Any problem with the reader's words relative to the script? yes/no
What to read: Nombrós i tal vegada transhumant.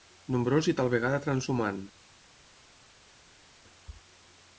no